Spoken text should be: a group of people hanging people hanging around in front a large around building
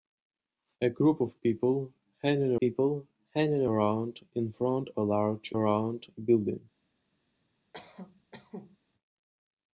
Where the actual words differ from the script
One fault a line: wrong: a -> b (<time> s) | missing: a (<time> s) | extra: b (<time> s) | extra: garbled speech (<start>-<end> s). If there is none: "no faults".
no faults